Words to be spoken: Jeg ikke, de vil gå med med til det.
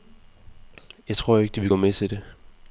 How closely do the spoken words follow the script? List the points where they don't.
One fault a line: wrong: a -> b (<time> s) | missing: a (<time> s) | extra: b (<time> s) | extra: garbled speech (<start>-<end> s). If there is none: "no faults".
extra: tror (1.2 s)
missing: med (1.9 s)